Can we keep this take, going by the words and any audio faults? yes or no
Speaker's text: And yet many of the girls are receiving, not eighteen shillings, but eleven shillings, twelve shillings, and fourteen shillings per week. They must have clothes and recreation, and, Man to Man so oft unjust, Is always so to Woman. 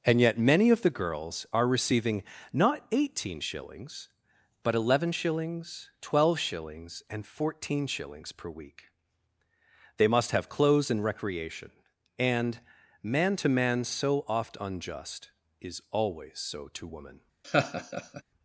no